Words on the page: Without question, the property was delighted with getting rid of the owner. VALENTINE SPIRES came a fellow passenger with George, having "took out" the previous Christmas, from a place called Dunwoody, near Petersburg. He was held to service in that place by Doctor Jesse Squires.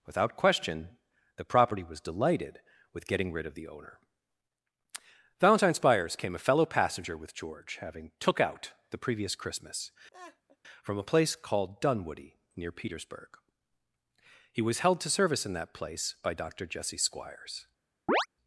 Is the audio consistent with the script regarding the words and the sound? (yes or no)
no